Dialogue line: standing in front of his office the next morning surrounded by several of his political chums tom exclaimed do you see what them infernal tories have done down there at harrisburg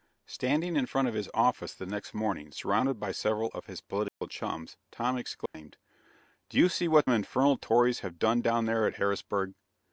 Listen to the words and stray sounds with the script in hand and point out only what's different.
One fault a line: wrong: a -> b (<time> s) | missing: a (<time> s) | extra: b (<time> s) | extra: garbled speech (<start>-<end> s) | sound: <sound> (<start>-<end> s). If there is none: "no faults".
sound: dropout (4.1-4.2 s)
sound: dropout (5.5-5.5 s)
missing: them (7.1 s)